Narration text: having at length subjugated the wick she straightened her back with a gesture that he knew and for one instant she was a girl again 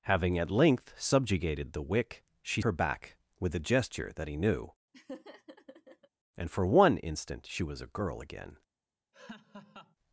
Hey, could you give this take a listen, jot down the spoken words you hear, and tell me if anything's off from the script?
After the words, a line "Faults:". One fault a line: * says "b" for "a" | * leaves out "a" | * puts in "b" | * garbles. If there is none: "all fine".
having at length subjugated the wick she her back with a gesture that he knew and for one instant she was a girl again
Faults:
* leaves out "straightened"